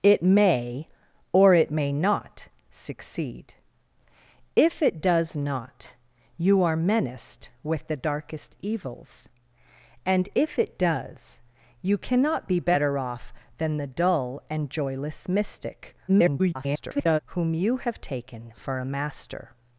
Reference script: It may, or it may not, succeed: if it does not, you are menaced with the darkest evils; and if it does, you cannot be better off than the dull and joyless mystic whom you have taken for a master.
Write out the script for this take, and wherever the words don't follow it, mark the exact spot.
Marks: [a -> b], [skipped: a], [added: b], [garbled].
It may, or it may not, succeed: if it does not, you are menaced with the darkest evils; and if it does, you cannot be better off than the dull and joyless mystic [garbled] whom you have taken for a master.